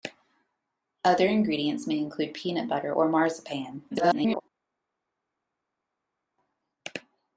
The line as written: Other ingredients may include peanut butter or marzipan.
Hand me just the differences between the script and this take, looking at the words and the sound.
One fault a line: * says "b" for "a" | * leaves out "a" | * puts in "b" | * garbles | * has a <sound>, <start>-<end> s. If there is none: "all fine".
* garbles